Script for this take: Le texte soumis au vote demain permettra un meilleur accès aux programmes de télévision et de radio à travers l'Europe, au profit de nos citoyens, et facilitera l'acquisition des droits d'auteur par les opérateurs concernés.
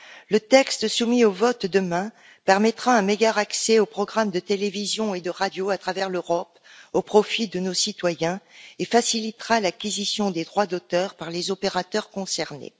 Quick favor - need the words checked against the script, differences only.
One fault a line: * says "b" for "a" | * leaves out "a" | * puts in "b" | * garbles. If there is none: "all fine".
all fine